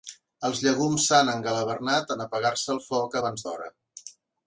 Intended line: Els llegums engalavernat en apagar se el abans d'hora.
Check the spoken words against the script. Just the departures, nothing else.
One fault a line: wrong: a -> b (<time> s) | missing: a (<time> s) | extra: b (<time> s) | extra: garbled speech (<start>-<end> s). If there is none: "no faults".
extra: s'han (1.1 s)
extra: foc (2.9 s)